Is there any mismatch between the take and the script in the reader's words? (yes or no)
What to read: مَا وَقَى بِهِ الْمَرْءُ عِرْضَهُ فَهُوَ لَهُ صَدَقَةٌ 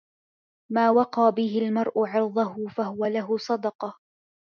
no